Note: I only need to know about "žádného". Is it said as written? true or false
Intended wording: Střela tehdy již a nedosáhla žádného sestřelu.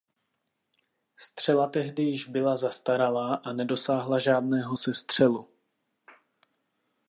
true